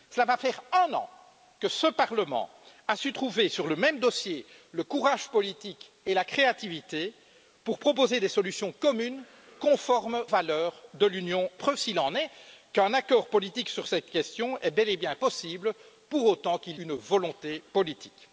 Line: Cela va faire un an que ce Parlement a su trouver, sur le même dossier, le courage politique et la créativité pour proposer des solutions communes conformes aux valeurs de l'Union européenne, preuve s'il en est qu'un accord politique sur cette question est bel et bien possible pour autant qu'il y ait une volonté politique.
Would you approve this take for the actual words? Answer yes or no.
no